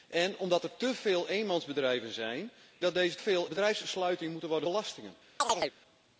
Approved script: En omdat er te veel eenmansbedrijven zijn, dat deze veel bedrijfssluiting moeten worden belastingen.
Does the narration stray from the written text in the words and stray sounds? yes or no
yes